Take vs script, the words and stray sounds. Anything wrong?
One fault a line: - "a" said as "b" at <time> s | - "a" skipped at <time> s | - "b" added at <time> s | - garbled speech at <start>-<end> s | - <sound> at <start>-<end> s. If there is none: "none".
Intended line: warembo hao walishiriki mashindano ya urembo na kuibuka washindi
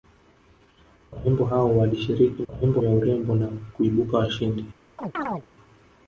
- "mashindano" said as "warembo" at 2.5 s
- chirp at 5.0-5.5 s